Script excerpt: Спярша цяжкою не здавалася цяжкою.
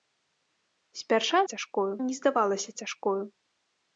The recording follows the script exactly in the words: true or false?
true